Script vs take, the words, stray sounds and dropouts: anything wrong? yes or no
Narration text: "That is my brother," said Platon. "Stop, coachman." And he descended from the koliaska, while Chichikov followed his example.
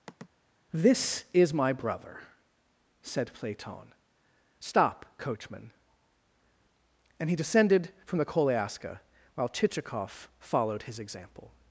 yes